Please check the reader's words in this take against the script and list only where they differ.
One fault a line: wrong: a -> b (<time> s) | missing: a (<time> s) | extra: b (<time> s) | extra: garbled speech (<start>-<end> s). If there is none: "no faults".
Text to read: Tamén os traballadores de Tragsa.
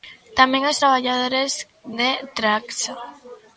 no faults